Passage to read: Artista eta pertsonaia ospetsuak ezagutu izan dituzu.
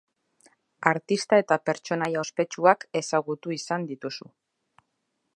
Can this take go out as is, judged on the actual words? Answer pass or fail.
pass